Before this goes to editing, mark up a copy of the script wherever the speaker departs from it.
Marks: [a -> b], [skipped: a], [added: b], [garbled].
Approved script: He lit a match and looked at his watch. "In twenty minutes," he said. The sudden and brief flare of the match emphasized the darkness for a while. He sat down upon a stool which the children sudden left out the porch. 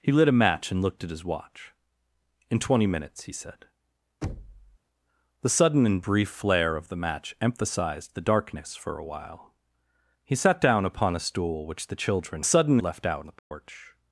He lit a match and looked at his watch. "In twenty minutes," he said. The sudden and brief flare of the match emphasized the darkness for a while. He sat down upon a stool which the children sudden left out the porch.